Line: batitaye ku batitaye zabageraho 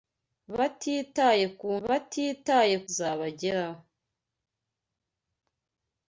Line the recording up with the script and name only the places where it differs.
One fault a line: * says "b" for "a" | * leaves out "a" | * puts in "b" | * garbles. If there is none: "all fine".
all fine